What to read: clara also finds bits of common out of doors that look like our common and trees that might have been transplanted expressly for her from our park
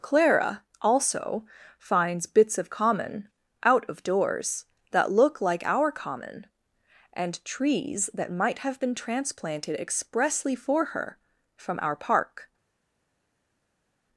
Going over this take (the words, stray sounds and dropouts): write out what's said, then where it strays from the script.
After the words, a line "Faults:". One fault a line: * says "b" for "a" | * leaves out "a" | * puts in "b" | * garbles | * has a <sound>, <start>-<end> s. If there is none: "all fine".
clara also finds bits of common out of doors that look like our common and trees that might have been transplanted expressly for her from our park
Faults:
all fine